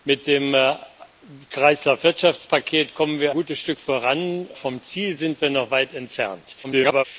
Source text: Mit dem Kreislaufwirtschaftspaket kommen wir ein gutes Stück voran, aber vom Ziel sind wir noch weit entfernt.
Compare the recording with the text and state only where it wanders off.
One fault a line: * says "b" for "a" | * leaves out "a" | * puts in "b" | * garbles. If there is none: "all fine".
* leaves out "ein"
* leaves out "aber"
* garbles